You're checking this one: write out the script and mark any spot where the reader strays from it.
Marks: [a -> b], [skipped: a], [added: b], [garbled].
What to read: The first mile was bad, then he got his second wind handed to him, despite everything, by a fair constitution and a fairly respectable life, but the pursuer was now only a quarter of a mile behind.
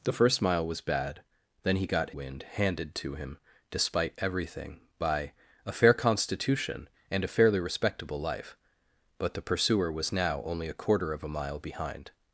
The first mile was bad, then he got [skipped: his second] wind handed to him, despite everything, by a fair constitution and a fairly respectable life, but the pursuer was now only a quarter of a mile behind.